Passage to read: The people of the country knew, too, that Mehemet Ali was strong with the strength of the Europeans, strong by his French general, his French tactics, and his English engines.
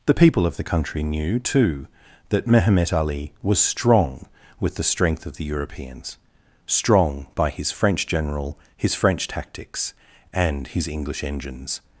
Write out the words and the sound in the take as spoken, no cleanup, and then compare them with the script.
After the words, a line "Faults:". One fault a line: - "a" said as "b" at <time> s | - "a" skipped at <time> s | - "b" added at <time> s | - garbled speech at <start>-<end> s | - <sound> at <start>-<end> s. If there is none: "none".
The people of the country knew, too, that Mehemet Ali was strong with the strength of the Europeans, strong by his French general, his French tactics, and his English engines.
Faults:
none